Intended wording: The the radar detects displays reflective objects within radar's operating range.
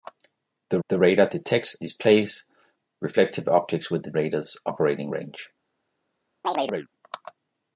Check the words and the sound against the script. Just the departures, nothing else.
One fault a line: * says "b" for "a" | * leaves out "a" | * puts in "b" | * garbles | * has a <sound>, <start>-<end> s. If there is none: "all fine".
* has a chirp, 6.4-6.9 s